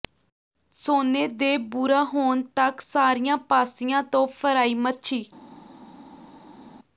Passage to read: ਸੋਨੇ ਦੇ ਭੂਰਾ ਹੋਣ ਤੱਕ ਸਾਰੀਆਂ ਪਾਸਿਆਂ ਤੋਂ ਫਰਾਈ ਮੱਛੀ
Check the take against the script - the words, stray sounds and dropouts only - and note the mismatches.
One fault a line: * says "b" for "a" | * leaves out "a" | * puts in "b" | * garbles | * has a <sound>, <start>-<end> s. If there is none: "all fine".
all fine